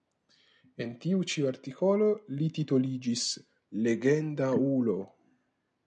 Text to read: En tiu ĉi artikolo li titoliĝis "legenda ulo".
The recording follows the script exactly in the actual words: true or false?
true